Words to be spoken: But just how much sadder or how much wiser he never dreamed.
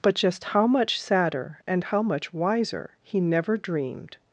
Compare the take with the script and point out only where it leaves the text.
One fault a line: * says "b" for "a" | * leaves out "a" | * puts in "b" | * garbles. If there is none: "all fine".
* says "and" for "or"